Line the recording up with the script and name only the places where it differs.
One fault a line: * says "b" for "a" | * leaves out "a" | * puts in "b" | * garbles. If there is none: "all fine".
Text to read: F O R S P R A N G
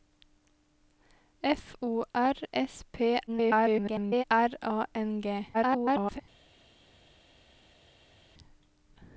* garbles
* garbles